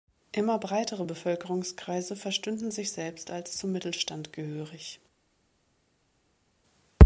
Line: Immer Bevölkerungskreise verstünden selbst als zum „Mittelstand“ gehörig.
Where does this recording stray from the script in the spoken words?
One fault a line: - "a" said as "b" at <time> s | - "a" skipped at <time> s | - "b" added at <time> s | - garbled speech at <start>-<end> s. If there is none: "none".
- "breitere" added at 0.6 s
- "sich" added at 2.7 s